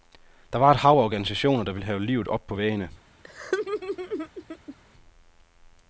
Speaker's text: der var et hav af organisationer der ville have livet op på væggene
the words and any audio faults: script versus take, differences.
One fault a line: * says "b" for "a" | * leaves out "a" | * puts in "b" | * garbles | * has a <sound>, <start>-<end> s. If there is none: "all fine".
* has a laugh, 3.2-4.8 s